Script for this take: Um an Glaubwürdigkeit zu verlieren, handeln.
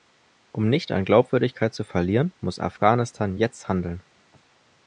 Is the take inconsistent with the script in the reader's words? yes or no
yes